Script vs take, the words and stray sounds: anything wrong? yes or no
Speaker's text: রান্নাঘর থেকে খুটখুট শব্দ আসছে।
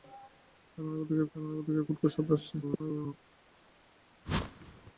yes